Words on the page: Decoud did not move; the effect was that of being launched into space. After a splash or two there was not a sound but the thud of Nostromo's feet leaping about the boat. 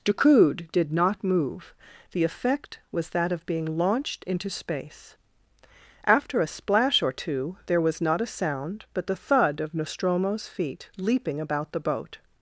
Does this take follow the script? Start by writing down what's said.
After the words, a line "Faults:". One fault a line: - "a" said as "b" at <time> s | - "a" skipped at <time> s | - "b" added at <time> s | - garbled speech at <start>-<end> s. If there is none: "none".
Decoud did not move; the effect was that of being launched into space. After a splash or two there was not a sound but the thud of Nostromo's feet leaping about the boat.
Faults:
none